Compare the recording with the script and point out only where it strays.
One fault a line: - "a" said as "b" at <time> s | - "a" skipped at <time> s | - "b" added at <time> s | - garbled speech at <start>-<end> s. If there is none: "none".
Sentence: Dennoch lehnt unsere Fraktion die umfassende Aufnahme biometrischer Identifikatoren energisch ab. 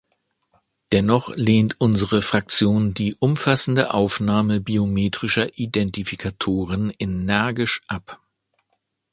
none